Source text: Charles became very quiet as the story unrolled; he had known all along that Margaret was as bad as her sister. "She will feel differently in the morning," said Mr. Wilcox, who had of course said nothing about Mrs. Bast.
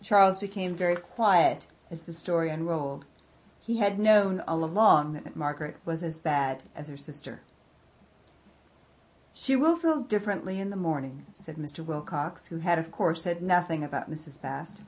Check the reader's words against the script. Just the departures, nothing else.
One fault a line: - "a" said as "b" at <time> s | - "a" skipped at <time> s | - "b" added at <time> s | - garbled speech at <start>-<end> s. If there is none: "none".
- "that" added at 5.2 s